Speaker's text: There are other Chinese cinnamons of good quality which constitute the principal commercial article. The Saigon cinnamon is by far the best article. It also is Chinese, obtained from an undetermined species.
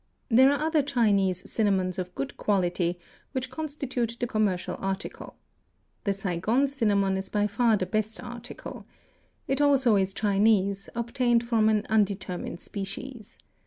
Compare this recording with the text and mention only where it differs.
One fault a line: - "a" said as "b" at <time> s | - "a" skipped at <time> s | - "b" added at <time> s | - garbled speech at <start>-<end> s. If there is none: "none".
- "principal" skipped at 4.2 s